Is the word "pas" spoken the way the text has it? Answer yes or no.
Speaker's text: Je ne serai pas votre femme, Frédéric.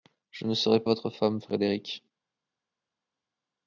no